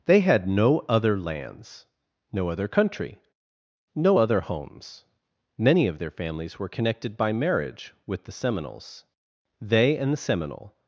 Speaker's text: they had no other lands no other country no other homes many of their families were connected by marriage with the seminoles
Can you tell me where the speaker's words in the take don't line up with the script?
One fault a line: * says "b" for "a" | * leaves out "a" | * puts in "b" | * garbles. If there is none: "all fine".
* puts in "they and the seminole"